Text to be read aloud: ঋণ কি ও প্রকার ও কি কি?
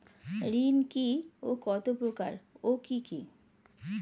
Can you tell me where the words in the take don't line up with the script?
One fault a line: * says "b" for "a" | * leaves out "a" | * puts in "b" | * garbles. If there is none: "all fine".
* puts in "কত"